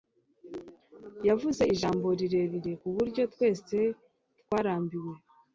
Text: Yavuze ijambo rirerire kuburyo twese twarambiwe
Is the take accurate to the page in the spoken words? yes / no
yes